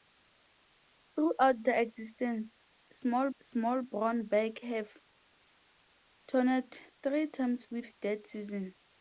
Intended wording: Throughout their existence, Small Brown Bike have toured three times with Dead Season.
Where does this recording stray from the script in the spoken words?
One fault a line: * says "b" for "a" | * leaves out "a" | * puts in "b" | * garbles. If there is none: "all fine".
* puts in "Small"